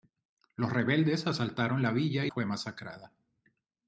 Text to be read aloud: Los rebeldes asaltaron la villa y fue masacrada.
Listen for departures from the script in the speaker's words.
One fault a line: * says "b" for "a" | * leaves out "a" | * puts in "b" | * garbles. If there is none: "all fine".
all fine